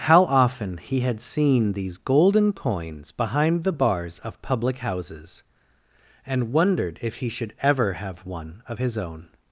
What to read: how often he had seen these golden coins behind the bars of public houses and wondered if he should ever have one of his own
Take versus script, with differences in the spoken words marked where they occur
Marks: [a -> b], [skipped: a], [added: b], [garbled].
how often he had seen these golden coins behind the bars of public houses and wondered if he should ever have one of his own